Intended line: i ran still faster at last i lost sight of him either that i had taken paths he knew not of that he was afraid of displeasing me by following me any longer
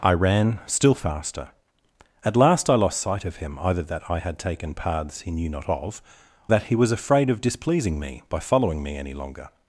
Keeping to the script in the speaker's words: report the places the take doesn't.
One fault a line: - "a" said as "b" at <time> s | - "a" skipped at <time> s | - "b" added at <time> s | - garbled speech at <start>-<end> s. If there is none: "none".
none